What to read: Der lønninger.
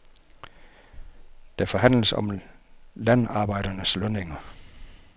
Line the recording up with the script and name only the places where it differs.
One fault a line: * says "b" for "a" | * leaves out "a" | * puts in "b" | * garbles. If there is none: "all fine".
* puts in "forhandles om landarbejdernes"